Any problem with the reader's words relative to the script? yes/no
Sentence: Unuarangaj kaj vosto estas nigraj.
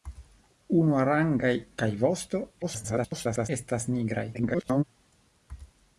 yes